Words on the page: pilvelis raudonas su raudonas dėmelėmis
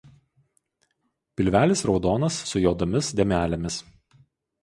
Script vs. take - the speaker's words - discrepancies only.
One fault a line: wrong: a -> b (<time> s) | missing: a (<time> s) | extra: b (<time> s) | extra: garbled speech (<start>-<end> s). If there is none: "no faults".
wrong: raudonas -> juodomis (2.7 s)